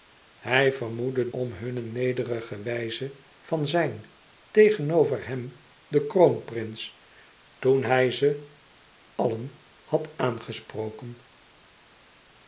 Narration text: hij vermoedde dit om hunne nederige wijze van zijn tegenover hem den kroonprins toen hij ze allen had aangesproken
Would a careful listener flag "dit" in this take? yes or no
yes